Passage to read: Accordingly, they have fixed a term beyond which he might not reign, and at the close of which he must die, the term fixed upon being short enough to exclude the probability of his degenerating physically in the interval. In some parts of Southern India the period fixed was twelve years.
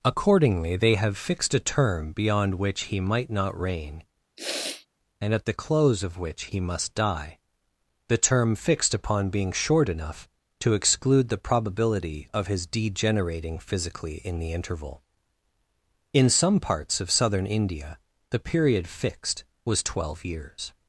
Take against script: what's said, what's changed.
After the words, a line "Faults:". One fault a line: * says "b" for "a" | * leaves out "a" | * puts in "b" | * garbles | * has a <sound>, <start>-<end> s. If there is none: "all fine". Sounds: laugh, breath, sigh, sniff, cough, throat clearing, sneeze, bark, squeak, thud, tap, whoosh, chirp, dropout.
Accordingly, they have fixed a term beyond which he might not reign, and at the close of which he must die, the term fixed upon being short enough to exclude the probability of his degenerating physically in the interval. In some parts of Southern India the period fixed was twelve years.
Faults:
* has a sniff, 4.4-4.9 s